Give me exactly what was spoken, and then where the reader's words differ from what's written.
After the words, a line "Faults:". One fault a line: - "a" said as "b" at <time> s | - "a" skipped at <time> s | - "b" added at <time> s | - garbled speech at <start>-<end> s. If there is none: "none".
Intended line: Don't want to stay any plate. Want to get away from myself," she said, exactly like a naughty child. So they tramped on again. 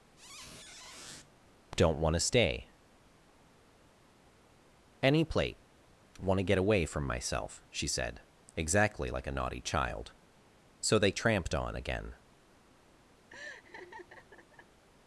Don't want to stay any plate. Want to get away from myself," she said, exactly like a naughty child. So they tramped on again.
Faults:
none